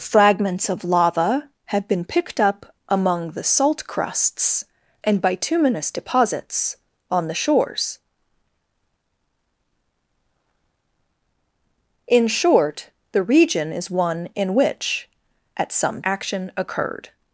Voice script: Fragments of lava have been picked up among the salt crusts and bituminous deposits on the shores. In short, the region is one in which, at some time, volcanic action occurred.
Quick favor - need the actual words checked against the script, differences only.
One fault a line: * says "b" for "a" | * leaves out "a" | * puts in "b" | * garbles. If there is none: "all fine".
* leaves out "time volcanic"